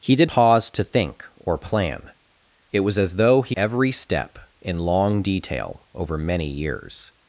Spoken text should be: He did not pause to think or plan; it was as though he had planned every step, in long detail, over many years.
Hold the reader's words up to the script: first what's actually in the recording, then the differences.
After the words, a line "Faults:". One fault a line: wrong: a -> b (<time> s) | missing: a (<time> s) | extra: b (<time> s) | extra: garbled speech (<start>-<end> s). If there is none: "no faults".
He did pause to think or plan; it was as though he every step, in long detail, over many years.
Faults:
missing: not (0.3 s)
missing: had planned (3.6 s)